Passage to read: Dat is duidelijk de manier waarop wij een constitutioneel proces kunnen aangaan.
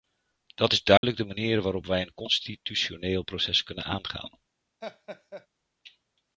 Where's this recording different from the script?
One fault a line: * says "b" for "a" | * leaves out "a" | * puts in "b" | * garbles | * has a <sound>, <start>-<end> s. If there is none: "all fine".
* has a dropout, 1.0-1.0 s
* has a laugh, 4.8-5.5 s